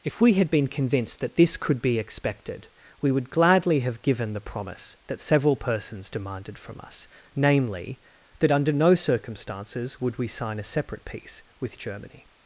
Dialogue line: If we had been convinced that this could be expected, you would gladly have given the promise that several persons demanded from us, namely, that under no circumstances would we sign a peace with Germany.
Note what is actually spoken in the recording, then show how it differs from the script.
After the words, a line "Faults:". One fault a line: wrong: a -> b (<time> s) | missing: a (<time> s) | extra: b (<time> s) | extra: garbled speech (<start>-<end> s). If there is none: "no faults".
If we had been convinced that this could be expected, we would gladly have given the promise that several persons demanded from us, namely, that under no circumstances would we sign a separate peace with Germany.
Faults:
wrong: you -> we (3.0 s)
extra: separate (10.6 s)